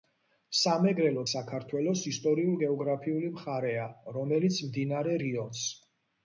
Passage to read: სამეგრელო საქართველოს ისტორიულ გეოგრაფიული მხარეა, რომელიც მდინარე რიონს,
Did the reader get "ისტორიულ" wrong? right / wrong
right